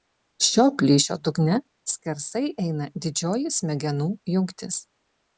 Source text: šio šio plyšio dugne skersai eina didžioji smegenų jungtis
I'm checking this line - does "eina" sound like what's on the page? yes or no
yes